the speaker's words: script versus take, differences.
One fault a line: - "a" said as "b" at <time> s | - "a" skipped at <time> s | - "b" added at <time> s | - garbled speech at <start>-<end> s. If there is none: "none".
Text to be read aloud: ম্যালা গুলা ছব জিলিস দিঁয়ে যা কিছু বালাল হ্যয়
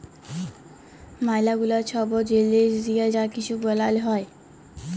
none